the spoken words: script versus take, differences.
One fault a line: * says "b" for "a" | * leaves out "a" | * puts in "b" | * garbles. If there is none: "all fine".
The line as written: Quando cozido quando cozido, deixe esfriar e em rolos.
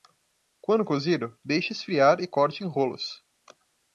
* leaves out "quando cozido"
* puts in "corte"